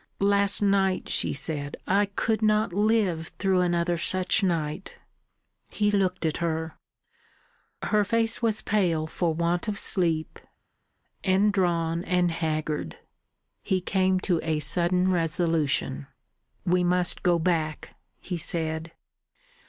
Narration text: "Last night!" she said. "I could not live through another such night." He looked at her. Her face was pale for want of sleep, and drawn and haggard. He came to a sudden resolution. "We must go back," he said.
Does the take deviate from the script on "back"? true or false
false